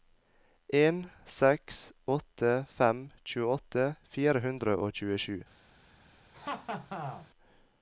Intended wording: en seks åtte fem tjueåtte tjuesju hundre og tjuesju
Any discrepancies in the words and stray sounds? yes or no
yes